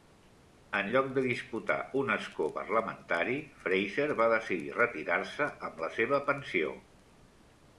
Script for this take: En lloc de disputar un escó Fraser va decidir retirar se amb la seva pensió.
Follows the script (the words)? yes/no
no